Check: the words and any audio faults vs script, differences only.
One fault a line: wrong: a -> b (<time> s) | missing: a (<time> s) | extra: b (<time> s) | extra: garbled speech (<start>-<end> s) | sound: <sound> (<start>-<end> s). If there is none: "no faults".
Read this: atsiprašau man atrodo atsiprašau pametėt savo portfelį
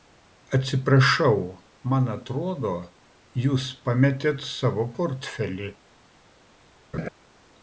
wrong: atsiprašau -> jūs (3.5 s)
sound: laugh (6.9-7.1 s)